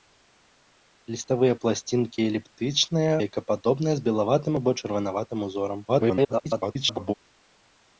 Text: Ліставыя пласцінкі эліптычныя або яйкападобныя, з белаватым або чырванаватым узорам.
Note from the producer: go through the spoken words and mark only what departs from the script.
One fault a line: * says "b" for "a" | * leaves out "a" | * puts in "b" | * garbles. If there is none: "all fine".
* leaves out "або"
* garbles